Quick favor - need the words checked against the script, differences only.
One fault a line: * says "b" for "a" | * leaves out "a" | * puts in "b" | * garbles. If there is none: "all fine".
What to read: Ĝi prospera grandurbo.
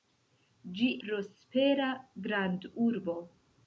all fine